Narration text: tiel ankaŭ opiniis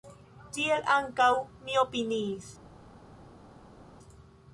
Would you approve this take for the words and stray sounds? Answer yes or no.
no